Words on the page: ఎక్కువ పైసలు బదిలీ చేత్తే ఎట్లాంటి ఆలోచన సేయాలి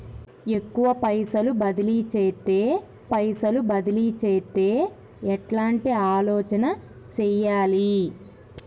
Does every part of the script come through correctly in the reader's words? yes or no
no